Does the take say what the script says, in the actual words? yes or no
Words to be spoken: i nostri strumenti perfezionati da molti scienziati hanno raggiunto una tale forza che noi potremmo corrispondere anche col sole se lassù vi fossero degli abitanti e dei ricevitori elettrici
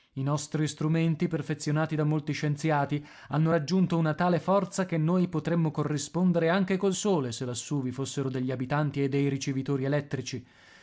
yes